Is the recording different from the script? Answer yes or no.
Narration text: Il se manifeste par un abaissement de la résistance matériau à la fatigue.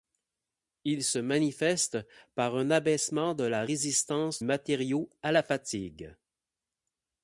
no